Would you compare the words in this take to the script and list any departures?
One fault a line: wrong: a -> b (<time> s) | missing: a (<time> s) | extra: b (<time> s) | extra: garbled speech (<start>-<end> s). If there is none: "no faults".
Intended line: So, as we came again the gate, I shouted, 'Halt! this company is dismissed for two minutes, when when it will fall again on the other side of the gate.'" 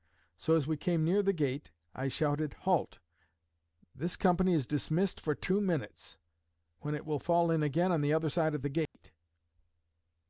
wrong: again -> near (1.1 s)
missing: when (7.0 s)
extra: in (7.5 s)